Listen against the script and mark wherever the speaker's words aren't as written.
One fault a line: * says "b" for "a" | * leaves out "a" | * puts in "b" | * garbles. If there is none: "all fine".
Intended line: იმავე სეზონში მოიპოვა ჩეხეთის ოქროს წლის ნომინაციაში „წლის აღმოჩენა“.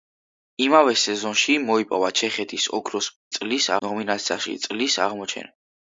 all fine